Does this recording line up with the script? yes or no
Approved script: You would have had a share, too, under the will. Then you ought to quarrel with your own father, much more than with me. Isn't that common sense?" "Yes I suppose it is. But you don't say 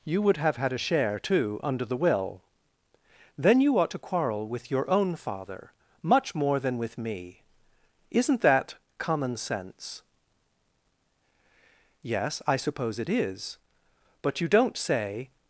yes